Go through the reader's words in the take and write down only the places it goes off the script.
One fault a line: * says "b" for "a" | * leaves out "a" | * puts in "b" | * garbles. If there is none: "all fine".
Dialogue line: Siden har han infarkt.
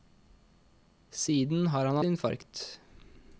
all fine